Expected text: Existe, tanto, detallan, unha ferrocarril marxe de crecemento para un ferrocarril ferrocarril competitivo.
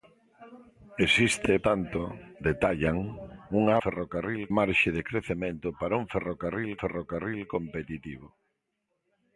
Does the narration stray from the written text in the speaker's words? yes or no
no